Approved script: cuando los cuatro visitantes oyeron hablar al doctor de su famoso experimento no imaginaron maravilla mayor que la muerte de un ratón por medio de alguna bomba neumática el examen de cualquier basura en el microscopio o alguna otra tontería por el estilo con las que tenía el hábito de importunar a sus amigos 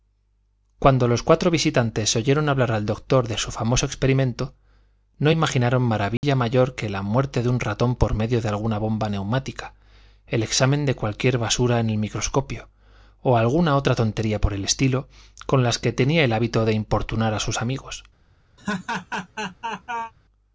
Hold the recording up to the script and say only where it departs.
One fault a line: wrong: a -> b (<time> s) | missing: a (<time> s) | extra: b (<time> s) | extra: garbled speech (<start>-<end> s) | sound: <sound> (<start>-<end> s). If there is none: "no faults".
sound: dropout (6.2-6.2 s)
sound: laugh (18.6-20.1 s)